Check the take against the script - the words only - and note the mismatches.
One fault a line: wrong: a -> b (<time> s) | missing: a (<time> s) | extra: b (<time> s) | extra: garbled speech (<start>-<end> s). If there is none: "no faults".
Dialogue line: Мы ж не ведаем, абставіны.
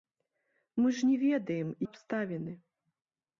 no faults